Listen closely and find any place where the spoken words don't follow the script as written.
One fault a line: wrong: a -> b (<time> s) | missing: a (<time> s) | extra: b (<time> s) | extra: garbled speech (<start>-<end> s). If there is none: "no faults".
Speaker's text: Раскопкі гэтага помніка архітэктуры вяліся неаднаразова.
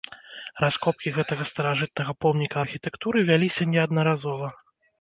extra: старажытнага (1.5 s)